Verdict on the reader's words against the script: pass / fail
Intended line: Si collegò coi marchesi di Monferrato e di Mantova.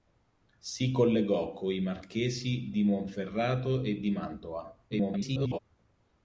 fail